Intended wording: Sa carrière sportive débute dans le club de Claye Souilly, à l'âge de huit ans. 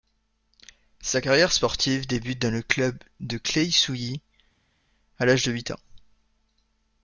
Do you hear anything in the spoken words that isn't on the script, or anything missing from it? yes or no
no